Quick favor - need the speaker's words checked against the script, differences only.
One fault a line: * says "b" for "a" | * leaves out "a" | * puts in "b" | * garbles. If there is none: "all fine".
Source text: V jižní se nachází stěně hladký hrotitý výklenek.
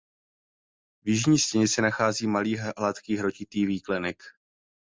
* puts in "stěně"
* says "malý" for "stěně"